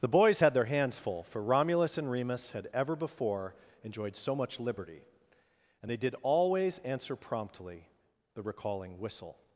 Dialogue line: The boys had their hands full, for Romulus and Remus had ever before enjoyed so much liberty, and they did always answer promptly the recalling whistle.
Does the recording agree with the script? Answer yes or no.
yes